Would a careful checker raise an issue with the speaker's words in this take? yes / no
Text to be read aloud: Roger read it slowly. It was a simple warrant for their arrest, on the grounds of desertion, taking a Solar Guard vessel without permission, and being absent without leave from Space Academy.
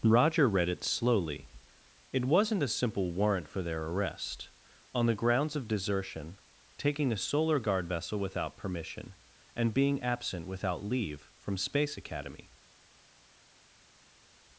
yes